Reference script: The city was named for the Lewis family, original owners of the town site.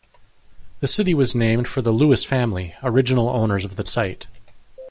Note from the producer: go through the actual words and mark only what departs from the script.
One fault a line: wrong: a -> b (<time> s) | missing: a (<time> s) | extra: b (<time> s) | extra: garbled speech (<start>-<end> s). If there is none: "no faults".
missing: town (3.8 s)